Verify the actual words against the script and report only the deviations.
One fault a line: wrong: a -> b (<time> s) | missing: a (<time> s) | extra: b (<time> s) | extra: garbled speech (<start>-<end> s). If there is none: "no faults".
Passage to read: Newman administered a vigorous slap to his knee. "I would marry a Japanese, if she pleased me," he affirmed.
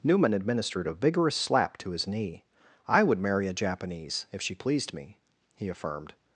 no faults